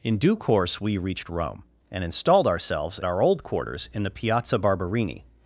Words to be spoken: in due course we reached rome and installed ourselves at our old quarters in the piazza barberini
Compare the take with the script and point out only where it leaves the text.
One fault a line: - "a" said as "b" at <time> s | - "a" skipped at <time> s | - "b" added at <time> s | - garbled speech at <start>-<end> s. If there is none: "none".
- "at" skipped at 3.0 s